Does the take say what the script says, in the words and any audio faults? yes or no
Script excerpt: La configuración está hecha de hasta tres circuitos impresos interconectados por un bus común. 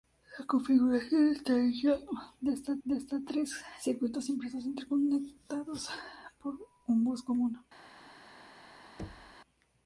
no